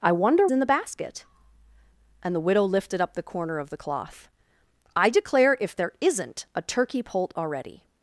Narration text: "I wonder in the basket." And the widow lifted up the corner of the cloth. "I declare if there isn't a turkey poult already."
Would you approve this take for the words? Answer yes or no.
yes